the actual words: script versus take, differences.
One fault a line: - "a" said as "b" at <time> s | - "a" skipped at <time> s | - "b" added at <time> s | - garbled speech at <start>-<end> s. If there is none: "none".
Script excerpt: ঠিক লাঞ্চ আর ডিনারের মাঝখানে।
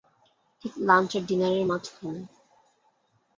none